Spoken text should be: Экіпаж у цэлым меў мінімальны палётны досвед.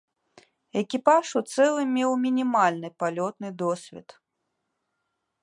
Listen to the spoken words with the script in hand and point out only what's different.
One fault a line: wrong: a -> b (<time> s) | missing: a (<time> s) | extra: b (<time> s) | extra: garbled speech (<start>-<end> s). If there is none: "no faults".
no faults